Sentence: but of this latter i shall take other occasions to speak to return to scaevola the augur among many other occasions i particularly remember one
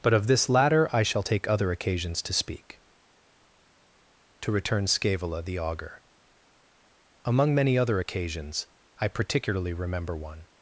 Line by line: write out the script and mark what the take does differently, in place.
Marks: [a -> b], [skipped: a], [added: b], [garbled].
but of this latter i shall take other occasions to speak to return [skipped: to] scaevola the augur among many other occasions i particularly remember one